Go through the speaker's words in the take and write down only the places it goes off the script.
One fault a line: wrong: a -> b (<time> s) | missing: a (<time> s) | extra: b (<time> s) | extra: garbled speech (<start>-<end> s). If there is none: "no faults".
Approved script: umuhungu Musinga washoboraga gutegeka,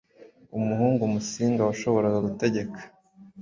no faults